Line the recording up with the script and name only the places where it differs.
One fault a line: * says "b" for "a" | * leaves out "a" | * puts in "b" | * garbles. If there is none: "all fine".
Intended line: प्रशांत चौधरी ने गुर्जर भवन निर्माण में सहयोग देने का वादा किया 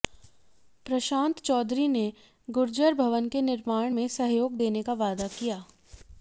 * puts in "के"